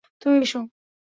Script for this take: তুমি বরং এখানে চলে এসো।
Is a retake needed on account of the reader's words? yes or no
yes